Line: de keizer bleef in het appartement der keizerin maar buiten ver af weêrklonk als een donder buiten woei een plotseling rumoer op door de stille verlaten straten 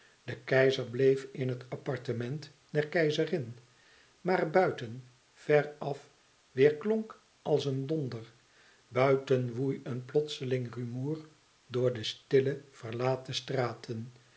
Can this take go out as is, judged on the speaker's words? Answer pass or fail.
fail